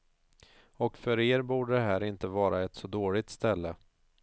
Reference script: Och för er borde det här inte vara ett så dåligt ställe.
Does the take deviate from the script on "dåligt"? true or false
false